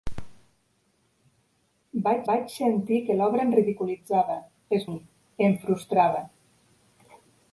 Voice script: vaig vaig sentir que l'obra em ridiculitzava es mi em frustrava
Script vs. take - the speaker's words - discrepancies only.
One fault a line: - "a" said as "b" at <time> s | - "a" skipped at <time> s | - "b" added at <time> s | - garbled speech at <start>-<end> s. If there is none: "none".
none